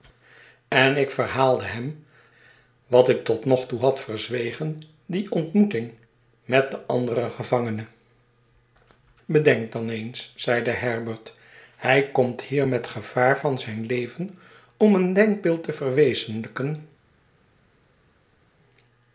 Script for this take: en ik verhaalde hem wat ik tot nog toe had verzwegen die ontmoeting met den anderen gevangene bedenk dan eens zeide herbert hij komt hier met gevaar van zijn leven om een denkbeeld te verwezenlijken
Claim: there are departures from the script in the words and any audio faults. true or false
false